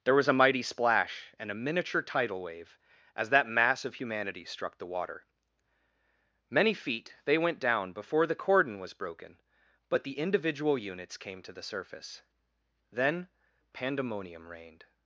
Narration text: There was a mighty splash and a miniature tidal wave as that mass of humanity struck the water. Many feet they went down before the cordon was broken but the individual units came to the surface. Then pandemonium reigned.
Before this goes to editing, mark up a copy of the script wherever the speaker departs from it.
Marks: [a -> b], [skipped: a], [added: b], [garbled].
There was a mighty splash and a miniature tidal wave as that mass of humanity struck the water. Many feet they went down before the cordon was broken but the individual units came to the surface. Then pandemonium reigned.